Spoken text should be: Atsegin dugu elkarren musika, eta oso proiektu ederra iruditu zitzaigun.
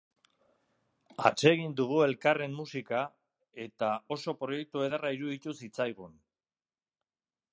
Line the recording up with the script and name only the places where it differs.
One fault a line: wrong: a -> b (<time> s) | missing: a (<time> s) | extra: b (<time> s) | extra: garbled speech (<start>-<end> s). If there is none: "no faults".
no faults